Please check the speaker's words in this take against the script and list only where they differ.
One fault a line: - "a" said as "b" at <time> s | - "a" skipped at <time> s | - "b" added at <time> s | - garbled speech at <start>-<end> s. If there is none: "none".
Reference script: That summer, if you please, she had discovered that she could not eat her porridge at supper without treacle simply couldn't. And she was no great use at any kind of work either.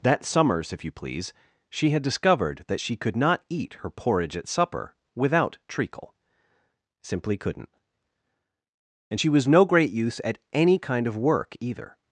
- "summer" said as "summers" at 0.2 s